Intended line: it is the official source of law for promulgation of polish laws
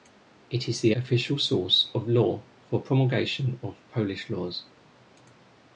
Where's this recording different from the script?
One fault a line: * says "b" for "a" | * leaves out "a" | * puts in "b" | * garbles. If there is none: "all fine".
all fine